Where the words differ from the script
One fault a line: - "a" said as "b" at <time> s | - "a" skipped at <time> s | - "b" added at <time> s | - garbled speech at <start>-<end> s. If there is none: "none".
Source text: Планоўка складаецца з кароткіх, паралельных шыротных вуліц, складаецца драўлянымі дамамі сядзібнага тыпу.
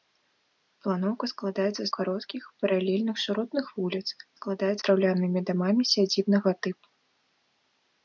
none